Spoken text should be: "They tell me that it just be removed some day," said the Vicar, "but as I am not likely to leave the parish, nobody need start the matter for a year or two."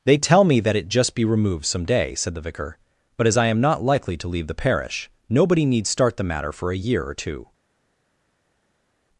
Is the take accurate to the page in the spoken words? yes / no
yes